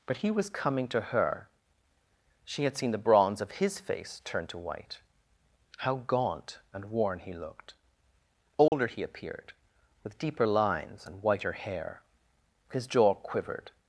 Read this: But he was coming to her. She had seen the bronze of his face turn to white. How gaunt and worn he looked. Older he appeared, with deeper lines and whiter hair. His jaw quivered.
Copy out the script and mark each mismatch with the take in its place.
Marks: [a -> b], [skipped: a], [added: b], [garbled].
But he was coming to her. She had seen the bronze of his face turn to white. How gaunt and worn he looked. Older he appeared, with deeper lines and whiter hair. His jaw quivered.